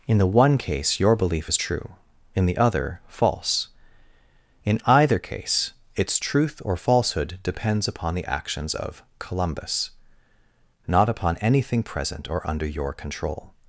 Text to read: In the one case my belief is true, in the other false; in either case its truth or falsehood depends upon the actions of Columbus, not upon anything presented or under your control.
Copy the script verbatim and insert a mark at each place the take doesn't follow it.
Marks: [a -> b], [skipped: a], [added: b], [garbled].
In the one case [my -> your] belief is true, in the other false; in either case its truth or falsehood depends upon the actions of Columbus, not upon anything [presented -> present] or under your control.